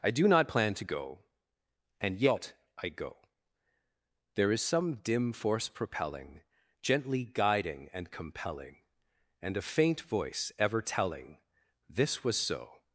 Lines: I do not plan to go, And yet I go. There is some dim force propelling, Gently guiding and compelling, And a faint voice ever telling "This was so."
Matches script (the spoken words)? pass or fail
pass